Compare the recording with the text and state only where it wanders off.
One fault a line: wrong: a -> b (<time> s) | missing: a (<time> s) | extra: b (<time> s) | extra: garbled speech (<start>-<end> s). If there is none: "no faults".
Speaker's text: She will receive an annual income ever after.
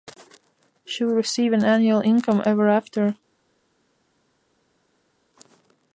no faults